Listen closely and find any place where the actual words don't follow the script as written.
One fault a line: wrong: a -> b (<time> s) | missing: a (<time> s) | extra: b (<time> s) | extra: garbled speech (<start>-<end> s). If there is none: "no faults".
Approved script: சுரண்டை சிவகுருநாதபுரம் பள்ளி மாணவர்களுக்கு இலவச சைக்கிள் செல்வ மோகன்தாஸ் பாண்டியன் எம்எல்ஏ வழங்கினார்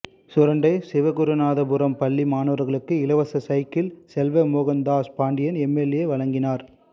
no faults